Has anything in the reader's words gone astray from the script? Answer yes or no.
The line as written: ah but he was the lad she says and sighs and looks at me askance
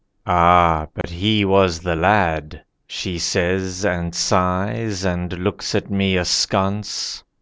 no